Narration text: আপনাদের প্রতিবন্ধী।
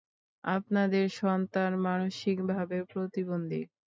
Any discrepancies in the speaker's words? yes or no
yes